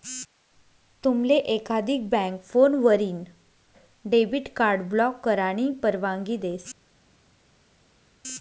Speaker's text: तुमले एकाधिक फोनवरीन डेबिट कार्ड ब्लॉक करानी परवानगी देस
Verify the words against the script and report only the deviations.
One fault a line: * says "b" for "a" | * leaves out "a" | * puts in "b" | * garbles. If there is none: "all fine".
* puts in "बँक"